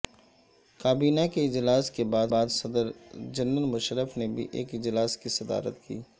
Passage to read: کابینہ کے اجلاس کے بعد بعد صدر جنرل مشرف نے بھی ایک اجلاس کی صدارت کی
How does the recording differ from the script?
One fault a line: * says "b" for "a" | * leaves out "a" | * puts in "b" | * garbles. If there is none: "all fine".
all fine